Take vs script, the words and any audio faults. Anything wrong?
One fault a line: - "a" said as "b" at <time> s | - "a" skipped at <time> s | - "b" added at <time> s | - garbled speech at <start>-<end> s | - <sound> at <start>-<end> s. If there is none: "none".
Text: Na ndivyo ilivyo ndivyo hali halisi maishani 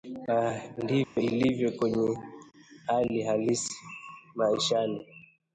- dropout at 1.0-1.2 s
- "ndivyo" said as "kwenye" at 1.7 s